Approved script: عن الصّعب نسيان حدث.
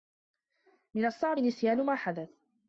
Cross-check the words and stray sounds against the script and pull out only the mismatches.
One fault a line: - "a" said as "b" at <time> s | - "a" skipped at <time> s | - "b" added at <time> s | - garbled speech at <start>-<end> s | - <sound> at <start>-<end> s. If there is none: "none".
- "عن" said as "من" at 0.9 s
- "ما" added at 1.8 s